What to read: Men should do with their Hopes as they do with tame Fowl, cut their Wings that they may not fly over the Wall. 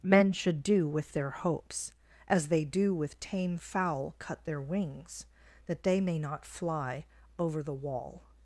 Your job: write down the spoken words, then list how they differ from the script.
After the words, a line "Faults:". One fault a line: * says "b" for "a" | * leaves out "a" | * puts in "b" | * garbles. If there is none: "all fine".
Men should do with their Hopes as they do with tame Fowl, cut their Wings that they may not fly over the Wall.
Faults:
all fine